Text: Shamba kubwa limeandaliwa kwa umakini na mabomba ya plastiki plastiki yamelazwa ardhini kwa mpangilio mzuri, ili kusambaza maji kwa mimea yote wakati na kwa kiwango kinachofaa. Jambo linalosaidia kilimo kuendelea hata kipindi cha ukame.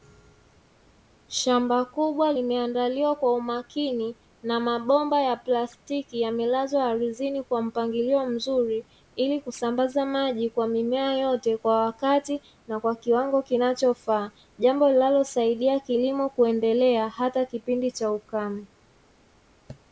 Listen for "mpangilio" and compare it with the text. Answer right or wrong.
right